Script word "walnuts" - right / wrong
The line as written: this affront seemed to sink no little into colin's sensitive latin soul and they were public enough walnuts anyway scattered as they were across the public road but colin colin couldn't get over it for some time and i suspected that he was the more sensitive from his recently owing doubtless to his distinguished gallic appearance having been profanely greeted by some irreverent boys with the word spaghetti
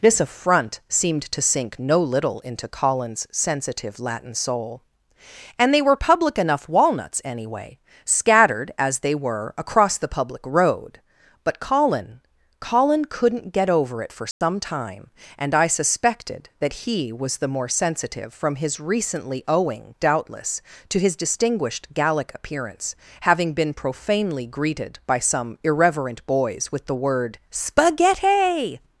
right